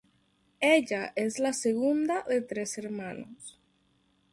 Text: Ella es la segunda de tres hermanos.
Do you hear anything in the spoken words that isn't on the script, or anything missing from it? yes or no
no